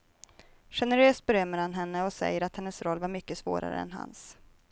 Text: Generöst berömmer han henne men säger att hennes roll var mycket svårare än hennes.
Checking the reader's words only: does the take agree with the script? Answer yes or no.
no